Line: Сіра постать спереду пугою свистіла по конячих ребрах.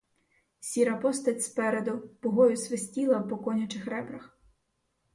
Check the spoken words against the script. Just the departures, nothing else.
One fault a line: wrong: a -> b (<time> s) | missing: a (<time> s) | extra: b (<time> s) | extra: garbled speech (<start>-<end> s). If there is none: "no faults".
no faults